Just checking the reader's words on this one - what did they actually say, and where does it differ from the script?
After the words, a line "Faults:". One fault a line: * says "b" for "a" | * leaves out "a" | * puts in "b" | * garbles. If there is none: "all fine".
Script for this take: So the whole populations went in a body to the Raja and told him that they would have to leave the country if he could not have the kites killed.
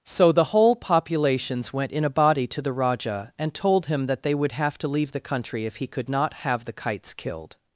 So the whole populations went in a body to the Raja and told him that they would have to leave the country if he could not have the kites killed.
Faults:
all fine